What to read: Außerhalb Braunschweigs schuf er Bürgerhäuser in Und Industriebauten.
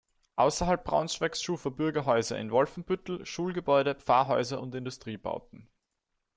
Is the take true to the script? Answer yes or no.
no